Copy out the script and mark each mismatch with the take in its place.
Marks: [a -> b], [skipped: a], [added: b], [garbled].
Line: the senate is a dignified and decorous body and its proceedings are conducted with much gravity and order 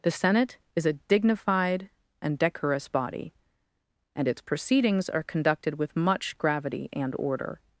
the senate is a dignified and decorous body and its proceedings are conducted with much gravity and order